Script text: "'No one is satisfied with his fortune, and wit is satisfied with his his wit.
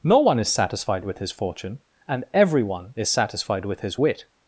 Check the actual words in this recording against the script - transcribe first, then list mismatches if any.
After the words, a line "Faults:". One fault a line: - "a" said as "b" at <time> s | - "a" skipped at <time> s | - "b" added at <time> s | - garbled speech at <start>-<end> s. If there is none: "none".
"'No one is satisfied with his fortune, and everyone is satisfied with his wit.
Faults:
- "wit" said as "everyone" at 2.3 s
- "his" skipped at 4.0 s